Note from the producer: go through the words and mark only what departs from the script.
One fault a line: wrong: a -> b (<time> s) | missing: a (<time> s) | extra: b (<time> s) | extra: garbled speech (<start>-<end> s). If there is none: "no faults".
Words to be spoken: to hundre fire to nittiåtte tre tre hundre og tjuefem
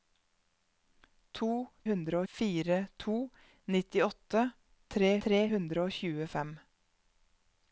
no faults